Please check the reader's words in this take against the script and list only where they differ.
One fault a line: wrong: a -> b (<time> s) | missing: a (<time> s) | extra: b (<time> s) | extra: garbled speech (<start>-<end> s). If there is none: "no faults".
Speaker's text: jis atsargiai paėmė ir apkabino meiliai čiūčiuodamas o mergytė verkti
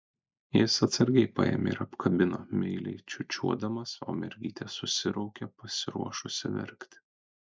extra: susiraukė pasiruošusi (4.8 s)